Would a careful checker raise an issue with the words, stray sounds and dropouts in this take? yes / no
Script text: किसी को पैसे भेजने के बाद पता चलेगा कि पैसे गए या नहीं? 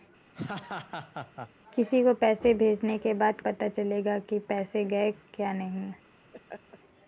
yes